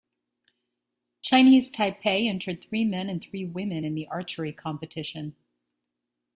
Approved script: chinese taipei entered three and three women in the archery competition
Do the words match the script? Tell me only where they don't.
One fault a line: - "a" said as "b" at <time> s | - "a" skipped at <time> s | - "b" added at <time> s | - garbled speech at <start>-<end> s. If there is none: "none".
- "men" added at 2.8 s